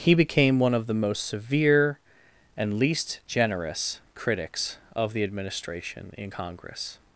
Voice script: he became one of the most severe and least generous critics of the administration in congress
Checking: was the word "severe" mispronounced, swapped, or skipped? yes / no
no